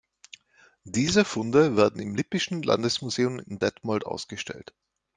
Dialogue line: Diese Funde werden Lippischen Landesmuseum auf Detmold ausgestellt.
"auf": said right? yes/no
no